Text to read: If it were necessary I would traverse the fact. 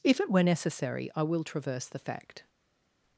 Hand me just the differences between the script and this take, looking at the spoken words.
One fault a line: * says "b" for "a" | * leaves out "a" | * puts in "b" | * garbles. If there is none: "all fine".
* says "will" for "would"